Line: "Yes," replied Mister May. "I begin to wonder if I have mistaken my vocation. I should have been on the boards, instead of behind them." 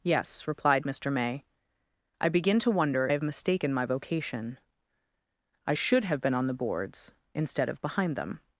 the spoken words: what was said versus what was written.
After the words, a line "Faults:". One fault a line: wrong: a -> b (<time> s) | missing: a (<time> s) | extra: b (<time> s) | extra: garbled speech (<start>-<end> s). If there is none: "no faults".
"Yes," replied Mister May. "I begin to wonder have mistaken my vocation. I should have been on the boards, instead of behind them."
Faults:
missing: if I (3.1 s)